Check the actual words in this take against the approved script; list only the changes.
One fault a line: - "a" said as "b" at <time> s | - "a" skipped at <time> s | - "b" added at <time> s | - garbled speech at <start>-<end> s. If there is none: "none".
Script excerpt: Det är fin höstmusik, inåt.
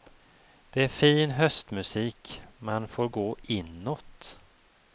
- "man får gå" added at 2.6 s